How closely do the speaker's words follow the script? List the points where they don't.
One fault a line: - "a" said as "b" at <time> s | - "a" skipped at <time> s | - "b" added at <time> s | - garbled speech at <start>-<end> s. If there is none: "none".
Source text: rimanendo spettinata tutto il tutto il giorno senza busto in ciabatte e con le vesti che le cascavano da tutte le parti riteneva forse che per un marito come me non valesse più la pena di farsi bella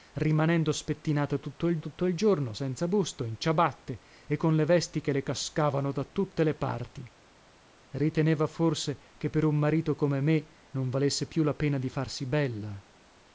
none